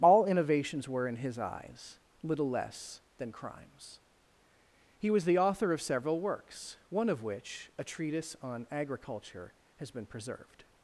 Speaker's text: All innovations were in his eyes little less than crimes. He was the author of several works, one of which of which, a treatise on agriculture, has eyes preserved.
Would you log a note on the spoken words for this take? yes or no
yes